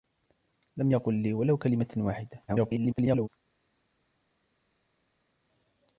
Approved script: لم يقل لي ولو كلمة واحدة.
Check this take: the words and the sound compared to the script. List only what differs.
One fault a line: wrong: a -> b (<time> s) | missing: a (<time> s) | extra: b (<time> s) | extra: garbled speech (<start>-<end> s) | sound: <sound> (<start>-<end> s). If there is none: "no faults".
extra: garbled speech (2.5-3.3 s)